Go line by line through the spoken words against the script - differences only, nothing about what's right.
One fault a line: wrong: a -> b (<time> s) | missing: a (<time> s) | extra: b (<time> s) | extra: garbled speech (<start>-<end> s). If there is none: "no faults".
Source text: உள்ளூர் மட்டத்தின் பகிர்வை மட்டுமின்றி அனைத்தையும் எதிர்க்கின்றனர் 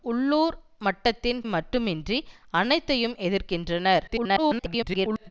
missing: பகிர்வை (1.4 s)
extra: garbled speech (4.1-5.3 s)